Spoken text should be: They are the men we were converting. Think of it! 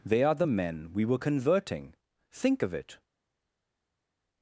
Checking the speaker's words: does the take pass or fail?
pass